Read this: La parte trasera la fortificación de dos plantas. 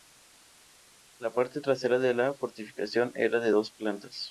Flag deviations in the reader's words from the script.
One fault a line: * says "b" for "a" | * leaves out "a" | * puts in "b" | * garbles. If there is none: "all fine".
* puts in "de"
* puts in "era"